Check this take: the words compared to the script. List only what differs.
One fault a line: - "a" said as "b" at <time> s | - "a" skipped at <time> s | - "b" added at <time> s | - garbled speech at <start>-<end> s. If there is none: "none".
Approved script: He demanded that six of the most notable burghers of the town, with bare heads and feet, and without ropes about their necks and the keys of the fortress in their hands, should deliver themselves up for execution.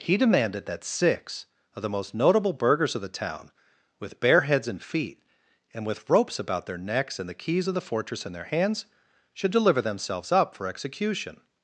- "without" said as "with" at 5.9 s